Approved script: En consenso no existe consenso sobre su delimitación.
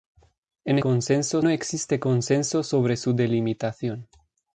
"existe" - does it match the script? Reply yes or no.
yes